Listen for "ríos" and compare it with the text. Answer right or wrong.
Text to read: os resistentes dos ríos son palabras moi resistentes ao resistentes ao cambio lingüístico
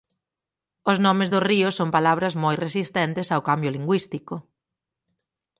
right